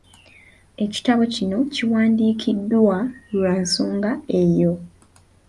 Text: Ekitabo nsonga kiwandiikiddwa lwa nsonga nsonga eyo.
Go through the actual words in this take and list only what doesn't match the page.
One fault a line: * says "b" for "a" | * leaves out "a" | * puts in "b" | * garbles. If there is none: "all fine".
* says "kino" for "nsonga"
* leaves out "nsonga"